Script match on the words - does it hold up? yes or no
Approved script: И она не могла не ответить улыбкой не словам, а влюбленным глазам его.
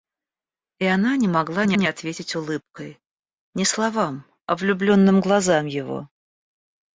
no